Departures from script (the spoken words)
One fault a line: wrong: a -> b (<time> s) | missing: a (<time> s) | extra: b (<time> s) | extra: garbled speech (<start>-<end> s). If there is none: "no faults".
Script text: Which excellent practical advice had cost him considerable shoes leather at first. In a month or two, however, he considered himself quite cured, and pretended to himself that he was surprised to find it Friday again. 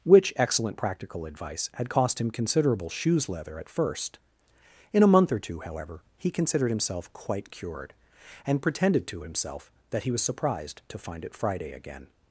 no faults